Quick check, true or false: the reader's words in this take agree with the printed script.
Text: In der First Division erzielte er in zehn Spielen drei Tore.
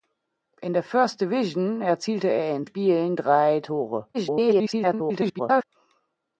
false